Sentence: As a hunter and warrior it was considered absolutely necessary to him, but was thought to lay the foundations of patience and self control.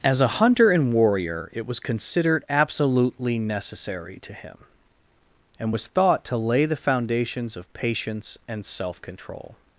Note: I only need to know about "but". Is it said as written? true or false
false